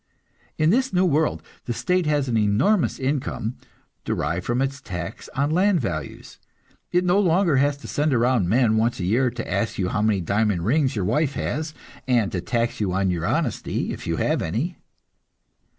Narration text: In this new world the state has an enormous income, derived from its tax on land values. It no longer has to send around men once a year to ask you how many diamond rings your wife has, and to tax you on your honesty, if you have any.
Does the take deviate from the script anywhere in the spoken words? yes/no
no